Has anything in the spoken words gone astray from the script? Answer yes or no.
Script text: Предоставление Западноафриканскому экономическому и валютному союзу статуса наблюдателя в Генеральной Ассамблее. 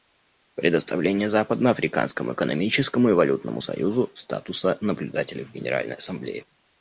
no